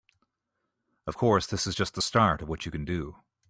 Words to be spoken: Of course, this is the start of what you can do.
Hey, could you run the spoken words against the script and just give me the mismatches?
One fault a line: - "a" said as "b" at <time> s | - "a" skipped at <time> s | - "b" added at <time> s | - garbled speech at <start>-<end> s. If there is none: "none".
- "just" added at 1.7 s